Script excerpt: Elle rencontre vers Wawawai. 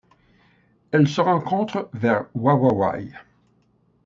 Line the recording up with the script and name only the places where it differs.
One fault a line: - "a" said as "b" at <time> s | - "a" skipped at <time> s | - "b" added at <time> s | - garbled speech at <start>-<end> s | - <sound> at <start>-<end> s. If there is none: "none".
- "se" added at 1.1 s